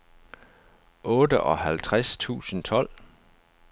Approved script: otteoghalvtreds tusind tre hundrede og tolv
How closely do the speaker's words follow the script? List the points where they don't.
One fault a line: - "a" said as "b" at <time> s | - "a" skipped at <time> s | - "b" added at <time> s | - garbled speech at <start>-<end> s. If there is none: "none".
- "tre hundrede og" skipped at 2.6 s